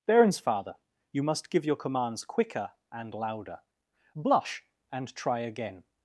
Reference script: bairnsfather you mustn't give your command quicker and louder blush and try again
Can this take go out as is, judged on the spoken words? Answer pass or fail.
fail